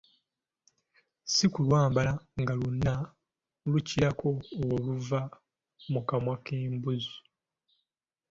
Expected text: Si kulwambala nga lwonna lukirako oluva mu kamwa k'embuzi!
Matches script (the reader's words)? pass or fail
pass